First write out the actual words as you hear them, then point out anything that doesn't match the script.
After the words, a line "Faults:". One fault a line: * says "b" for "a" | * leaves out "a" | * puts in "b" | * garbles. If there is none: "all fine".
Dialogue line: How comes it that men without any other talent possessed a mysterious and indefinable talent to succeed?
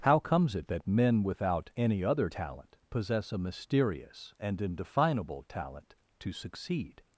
How comes it that men without any other talent possess a mysterious and indefinable talent to succeed?
Faults:
* says "possess" for "possessed"